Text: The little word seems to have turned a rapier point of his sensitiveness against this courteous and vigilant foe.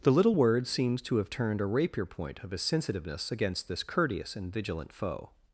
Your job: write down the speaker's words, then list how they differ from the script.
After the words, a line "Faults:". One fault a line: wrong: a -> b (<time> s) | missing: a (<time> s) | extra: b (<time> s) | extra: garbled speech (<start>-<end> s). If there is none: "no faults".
The little word seems to have turned a rapier point of his sensitiveness against this courteous and vigilant foe.
Faults:
no faults